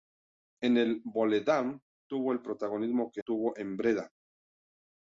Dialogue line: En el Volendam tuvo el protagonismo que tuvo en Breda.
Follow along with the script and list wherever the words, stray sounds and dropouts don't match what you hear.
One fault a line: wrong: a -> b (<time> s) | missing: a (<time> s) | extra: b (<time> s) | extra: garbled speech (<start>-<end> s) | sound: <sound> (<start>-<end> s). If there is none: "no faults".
no faults